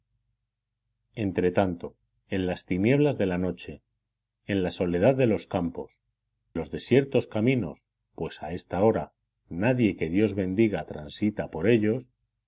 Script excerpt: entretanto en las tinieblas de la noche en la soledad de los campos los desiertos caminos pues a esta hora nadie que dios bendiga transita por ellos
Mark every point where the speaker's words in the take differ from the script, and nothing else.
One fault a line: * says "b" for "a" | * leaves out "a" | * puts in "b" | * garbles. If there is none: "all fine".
all fine